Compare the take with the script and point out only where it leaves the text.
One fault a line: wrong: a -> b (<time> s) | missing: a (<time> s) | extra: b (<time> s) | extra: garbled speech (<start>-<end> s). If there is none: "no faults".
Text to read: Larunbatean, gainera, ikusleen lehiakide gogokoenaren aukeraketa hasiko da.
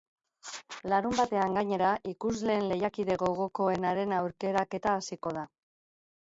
no faults